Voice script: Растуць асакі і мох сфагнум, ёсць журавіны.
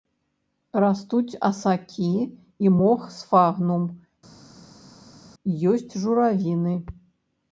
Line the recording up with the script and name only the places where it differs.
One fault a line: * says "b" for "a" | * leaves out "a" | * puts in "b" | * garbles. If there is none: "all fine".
all fine